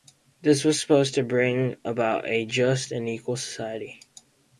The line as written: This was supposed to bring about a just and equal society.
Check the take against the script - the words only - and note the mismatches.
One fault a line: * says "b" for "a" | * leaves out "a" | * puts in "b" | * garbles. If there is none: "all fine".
all fine